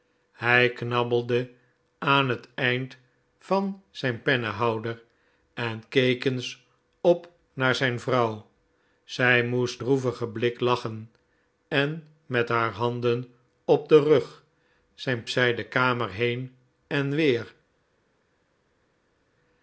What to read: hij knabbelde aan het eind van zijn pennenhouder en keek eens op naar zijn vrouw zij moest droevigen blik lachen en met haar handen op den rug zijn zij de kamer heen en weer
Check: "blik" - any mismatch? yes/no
no